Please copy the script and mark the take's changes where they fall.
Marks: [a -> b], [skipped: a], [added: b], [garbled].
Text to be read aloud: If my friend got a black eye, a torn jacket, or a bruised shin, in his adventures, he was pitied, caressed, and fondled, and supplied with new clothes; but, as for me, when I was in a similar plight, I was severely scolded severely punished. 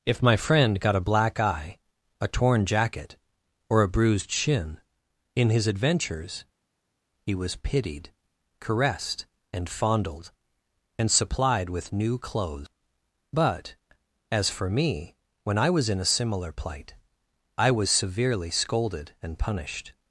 If my friend got a black eye, a torn jacket, or a bruised shin, in his adventures, he was pitied, caressed, and fondled, and supplied with new clothes; but, as for me, when I was in a similar plight, I was severely scolded [severely -> and] punished.